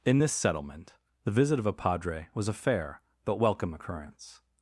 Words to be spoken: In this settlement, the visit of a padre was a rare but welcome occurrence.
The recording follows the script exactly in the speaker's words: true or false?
false